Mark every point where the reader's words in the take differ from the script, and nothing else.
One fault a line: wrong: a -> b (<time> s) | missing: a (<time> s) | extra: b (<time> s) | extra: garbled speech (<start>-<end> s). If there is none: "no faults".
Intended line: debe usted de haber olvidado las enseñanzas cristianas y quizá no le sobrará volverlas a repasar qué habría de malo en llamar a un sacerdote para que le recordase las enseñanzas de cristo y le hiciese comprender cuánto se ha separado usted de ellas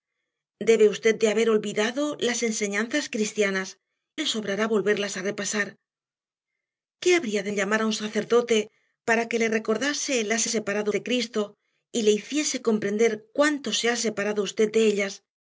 missing: y quizá no (3.8 s)
missing: malo (7.5 s)
wrong: enseñanzas -> separado (10.5 s)